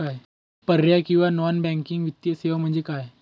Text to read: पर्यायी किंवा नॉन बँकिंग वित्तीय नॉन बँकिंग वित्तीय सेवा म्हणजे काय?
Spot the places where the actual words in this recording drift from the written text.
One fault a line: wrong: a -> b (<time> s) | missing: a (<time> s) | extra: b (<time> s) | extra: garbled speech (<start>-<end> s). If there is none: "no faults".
missing: नॉन बँकिंग वित्तीय (2.3 s)